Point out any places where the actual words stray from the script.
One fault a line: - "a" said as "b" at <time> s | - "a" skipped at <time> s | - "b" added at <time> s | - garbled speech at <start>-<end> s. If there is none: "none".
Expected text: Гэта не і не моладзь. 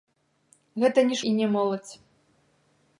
none